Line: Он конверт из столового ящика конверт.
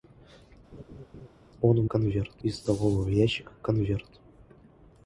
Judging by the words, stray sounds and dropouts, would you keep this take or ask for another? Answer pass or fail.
fail